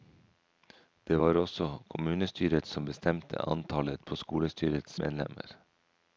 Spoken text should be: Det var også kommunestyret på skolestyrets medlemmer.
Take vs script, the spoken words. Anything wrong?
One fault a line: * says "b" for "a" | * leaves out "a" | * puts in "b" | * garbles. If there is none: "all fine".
* puts in "som bestemte antallet"